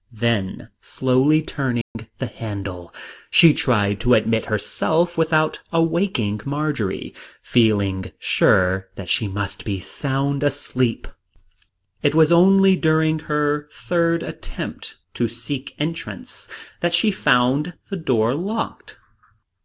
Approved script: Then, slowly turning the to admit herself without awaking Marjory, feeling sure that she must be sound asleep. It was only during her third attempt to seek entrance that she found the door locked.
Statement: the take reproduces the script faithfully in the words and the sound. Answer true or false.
false